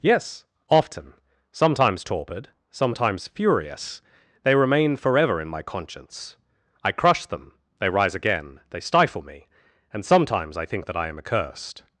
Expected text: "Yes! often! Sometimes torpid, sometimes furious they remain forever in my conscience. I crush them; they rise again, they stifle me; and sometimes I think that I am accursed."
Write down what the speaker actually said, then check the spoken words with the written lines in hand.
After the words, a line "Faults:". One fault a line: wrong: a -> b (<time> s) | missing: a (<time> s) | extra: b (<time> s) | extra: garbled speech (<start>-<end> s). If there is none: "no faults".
"Yes! often! Sometimes torpid, sometimes furious they remain forever in my conscience. I crush them; they rise again, they stifle me; and sometimes I think that I am accursed."
Faults:
no faults